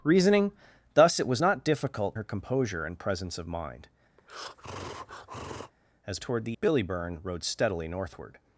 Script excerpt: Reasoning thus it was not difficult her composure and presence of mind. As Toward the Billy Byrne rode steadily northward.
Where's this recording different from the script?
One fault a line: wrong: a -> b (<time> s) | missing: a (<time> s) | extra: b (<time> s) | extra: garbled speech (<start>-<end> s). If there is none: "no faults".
no faults